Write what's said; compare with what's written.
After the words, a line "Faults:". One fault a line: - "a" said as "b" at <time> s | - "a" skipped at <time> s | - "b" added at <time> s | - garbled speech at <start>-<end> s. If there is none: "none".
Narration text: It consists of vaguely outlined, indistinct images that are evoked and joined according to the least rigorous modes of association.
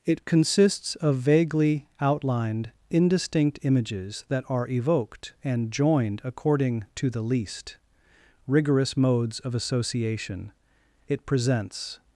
It consists of vaguely outlined, indistinct images that are evoked and joined according to the least rigorous modes of association. It presents
Faults:
- "It presents" added at 11.1 s